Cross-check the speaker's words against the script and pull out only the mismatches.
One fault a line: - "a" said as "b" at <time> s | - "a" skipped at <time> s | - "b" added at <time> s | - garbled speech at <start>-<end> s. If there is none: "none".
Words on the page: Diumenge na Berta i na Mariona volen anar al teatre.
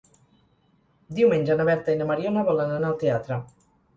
none